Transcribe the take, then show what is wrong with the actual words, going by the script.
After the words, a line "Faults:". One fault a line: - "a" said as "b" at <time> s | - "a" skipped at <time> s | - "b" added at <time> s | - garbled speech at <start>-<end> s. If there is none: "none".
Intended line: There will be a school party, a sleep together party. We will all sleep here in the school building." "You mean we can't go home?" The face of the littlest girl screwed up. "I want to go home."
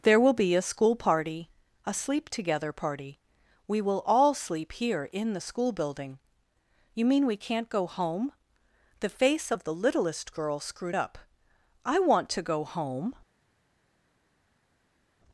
There will be a school party, a sleep together party. We will all sleep here in the school building." "You mean we can't go home?" The face of the littlest girl screwed up. "I want to go home."
Faults:
none